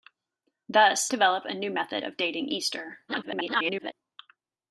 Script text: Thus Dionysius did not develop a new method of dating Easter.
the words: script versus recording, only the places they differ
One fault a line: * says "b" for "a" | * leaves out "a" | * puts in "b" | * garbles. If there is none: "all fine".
* leaves out "Dionysius did not"
* garbles